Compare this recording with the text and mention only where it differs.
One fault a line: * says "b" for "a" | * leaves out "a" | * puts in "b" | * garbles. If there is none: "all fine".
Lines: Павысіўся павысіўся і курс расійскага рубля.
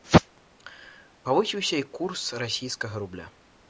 * leaves out "павысіўся"